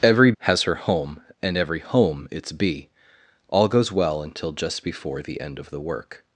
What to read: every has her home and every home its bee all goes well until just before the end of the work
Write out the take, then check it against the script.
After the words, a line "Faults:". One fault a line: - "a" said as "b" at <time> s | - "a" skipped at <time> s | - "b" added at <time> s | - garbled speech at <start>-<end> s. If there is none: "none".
every has her home and every home its bee all goes well until just before the end of the work
Faults:
none